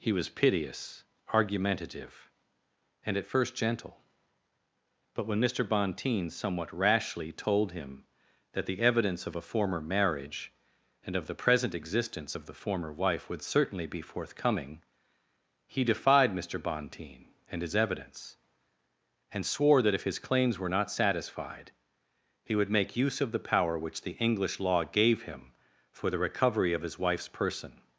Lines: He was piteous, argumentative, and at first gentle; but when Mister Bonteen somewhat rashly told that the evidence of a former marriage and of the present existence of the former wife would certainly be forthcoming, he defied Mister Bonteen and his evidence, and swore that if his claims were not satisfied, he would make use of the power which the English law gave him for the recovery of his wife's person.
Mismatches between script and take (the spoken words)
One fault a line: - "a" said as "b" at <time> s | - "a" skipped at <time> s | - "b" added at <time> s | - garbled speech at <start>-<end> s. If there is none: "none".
- "him" added at 7.7 s